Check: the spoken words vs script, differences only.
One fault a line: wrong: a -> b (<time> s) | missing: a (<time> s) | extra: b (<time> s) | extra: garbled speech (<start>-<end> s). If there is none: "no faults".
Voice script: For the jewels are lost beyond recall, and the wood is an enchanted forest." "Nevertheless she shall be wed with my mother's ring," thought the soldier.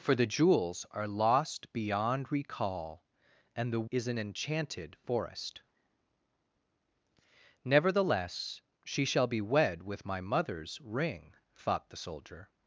missing: wood (3.9 s)